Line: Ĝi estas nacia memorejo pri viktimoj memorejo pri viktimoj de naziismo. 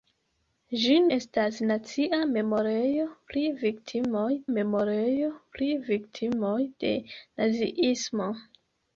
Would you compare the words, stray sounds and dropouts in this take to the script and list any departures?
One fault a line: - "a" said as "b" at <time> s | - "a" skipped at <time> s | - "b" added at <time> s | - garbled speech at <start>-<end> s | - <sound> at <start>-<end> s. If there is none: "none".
none